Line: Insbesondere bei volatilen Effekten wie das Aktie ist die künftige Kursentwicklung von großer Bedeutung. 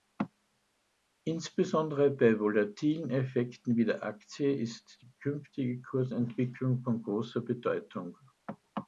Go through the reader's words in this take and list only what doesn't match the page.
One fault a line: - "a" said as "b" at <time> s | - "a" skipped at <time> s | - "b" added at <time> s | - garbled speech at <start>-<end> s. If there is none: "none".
- "das" said as "der" at 3.9 s